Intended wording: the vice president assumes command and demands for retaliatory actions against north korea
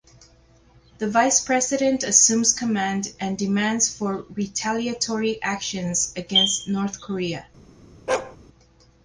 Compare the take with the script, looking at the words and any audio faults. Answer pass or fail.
fail